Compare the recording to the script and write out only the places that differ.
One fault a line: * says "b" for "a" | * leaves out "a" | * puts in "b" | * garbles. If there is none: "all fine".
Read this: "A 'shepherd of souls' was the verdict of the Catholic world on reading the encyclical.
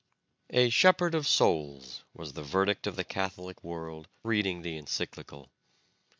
* leaves out "on"